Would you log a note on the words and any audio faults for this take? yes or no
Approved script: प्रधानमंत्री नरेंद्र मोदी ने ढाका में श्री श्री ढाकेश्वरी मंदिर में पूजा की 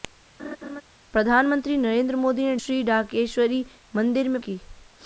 yes